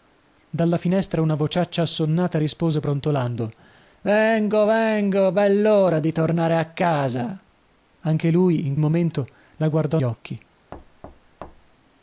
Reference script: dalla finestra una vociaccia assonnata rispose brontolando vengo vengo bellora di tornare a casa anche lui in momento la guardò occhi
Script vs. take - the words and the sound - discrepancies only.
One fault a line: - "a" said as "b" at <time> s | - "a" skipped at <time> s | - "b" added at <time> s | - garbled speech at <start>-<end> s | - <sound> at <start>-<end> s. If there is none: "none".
- thud at 10.7-11.8 s